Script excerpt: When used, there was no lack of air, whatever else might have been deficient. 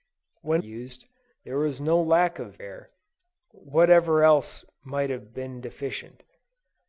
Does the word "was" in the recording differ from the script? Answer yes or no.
no